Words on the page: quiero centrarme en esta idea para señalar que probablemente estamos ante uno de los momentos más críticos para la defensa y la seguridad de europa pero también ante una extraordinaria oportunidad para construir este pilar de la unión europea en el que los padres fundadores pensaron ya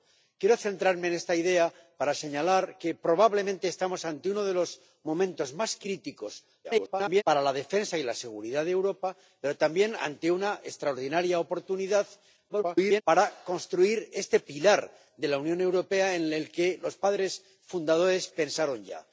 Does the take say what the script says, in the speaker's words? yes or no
no